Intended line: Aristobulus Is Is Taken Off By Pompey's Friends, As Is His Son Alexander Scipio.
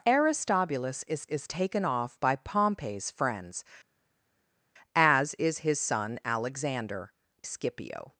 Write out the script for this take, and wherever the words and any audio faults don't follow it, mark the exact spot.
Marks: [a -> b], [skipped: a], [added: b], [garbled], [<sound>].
Aristobulus Is Is Taken Off By Pompey's Friends, As Is His Son Alexander Scipio.